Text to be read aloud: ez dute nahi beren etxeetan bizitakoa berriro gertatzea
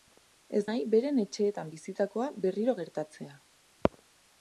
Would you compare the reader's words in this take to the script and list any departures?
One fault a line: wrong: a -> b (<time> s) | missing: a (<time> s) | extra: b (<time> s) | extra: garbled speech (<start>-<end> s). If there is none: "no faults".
missing: dute (0.6 s)